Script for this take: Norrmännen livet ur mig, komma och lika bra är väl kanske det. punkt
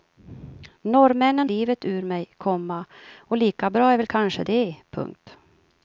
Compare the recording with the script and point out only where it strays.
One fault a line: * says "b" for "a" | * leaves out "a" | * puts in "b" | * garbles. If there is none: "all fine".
all fine